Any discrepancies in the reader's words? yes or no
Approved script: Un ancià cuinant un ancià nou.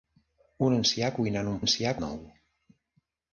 no